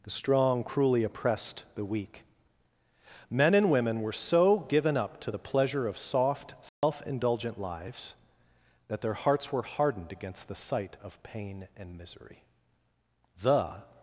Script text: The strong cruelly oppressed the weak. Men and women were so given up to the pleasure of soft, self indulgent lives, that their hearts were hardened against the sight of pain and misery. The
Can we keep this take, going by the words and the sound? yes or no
no